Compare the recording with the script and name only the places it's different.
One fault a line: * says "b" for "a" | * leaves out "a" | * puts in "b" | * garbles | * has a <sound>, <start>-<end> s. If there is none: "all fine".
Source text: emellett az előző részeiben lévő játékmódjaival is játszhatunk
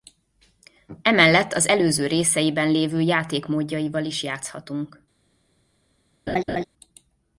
* has a laugh, 6.3-6.6 s